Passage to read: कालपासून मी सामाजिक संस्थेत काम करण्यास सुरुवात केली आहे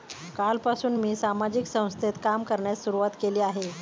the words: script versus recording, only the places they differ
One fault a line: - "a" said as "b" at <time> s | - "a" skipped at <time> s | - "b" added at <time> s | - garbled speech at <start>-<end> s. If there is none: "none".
none